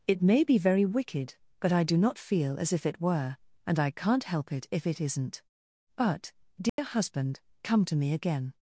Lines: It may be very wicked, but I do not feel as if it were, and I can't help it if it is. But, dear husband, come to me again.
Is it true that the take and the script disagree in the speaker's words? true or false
true